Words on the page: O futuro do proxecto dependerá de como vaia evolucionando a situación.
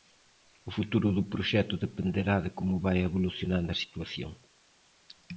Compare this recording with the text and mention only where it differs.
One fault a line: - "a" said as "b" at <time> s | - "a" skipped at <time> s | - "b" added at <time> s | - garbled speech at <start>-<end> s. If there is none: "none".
none